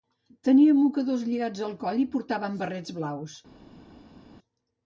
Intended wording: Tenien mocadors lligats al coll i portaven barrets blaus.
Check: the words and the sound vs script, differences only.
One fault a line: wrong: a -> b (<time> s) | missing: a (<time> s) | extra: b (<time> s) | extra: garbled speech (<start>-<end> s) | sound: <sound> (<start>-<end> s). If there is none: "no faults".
no faults